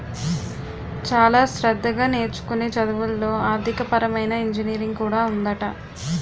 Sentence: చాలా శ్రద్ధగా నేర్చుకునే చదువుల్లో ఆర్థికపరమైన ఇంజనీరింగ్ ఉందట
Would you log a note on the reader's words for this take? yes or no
yes